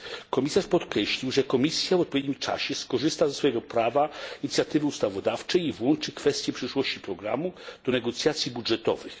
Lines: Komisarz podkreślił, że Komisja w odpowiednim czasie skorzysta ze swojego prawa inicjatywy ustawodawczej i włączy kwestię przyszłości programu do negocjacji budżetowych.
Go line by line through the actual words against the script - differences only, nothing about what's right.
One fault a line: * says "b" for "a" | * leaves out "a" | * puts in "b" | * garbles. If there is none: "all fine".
all fine